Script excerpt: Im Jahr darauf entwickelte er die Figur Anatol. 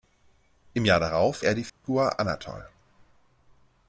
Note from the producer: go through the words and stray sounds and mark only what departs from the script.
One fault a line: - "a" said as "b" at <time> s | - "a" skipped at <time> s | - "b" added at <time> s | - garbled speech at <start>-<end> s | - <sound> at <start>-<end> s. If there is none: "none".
- "entwickelte" skipped at 1.4 s
- dropout at 1.7-1.8 s